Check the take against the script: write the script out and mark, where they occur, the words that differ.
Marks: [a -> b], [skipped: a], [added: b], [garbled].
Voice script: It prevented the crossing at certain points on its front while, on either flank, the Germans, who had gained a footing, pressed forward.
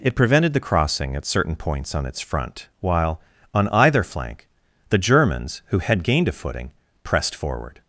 It prevented the crossing at certain points on its front while, on either flank, the Germans, who had gained a footing, pressed forward.